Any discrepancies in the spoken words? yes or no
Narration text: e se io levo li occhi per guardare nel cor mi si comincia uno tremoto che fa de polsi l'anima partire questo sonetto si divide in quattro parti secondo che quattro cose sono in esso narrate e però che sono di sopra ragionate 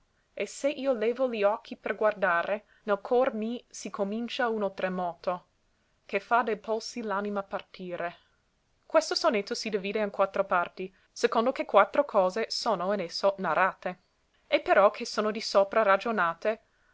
no